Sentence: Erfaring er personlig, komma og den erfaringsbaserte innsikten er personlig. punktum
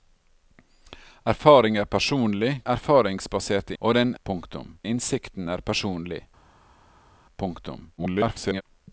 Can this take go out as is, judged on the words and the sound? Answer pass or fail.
fail